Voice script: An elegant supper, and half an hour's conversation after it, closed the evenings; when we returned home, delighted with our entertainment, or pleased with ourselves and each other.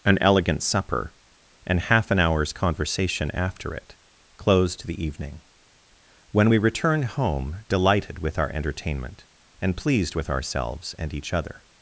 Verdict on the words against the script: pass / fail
fail